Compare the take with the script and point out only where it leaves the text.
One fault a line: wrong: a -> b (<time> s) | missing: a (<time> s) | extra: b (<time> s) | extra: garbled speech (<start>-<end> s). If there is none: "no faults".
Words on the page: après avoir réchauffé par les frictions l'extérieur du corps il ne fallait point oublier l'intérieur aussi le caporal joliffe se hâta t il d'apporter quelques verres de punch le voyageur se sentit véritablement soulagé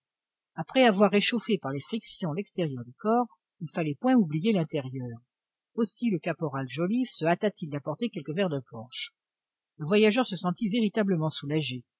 no faults